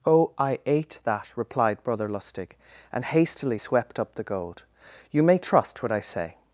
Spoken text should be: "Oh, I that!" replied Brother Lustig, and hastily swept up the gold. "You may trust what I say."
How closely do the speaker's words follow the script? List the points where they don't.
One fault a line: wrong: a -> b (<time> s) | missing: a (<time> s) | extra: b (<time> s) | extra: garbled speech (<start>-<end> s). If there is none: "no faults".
extra: ate (0.7 s)